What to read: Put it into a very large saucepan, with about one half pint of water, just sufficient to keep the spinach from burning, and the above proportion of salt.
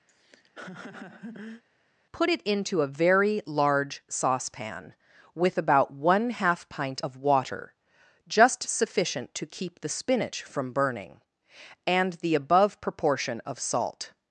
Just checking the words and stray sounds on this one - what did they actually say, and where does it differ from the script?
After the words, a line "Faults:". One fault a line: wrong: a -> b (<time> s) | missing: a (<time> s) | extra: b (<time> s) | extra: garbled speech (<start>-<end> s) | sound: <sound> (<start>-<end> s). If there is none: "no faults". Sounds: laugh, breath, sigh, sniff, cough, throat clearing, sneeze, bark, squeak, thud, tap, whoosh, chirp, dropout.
Put it into a very large saucepan, with about one half pint of water, just sufficient to keep the spinach from burning, and the above proportion of salt.
Faults:
sound: laugh (0.1-1.6 s)